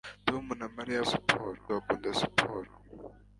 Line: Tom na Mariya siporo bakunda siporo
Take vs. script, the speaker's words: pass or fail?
pass